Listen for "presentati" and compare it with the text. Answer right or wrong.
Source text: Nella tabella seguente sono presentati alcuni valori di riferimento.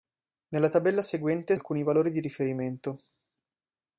wrong